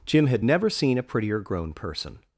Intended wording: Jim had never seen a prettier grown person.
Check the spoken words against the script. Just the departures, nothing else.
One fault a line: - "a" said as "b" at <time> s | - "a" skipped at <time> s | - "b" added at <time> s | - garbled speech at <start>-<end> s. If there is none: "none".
none